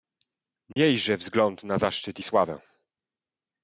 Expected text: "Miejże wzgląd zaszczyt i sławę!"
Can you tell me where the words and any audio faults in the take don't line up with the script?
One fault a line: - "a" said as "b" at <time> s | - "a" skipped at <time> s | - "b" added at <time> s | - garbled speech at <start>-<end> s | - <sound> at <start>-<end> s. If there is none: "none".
- dropout at 0.7-0.8 s
- "na" added at 1.6 s